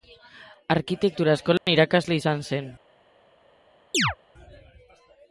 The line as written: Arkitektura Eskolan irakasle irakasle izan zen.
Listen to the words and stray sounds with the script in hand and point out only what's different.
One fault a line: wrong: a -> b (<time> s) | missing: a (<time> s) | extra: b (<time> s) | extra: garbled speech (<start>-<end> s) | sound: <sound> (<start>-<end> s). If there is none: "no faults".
sound: dropout (1.6-1.7 s)
missing: irakasle (2.2 s)
sound: chirp (3.9-4.2 s)